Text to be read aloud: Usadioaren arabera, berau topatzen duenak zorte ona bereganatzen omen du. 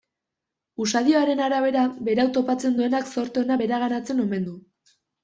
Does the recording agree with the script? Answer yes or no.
yes